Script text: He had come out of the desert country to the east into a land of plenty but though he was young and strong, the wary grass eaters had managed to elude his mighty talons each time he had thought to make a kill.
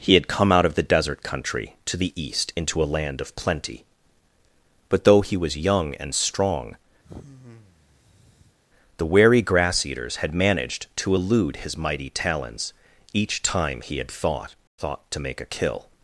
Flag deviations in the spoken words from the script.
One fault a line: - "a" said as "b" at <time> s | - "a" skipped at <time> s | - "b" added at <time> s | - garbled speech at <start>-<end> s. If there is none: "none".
- "thought" added at 14.8 s